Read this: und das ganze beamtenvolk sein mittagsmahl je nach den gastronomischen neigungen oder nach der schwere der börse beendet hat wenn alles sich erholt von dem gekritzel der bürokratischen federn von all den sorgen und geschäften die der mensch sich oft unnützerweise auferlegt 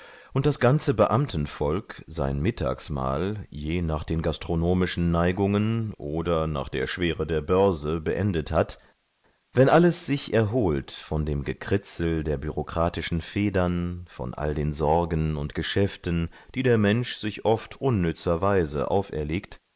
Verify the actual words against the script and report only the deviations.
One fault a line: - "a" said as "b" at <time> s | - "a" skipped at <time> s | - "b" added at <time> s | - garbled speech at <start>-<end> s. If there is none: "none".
none